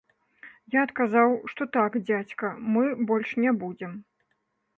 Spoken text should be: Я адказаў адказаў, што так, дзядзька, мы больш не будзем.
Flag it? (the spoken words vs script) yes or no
yes